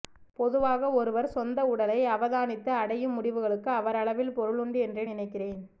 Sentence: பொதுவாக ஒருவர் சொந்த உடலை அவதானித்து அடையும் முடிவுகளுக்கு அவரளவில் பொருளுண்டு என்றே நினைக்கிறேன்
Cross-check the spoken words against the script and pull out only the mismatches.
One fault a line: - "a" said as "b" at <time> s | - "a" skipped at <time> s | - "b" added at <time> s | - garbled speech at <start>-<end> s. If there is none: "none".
none